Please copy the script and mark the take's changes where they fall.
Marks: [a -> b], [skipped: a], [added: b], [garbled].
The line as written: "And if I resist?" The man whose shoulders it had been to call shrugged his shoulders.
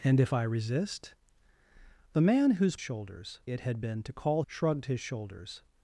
"And if I resist?" The man whose shoulders it had been to call shrugged his shoulders.